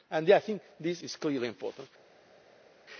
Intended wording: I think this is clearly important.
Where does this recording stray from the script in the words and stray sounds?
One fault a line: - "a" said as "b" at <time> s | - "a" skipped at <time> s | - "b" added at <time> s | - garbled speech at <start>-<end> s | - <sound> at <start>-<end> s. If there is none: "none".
none